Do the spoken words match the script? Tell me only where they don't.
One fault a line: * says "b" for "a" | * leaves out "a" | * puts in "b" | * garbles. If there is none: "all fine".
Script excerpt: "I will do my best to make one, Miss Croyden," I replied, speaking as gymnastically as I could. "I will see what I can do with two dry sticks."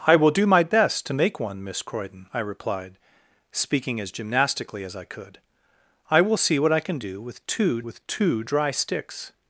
* puts in "with two"